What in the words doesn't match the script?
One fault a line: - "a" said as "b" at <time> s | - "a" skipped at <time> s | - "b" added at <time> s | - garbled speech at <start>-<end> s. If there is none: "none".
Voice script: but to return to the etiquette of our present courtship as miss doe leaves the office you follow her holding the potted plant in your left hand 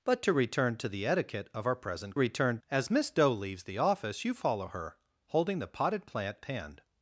- "courtship" said as "return" at 2.2 s
- "in your left" skipped at 6.4 s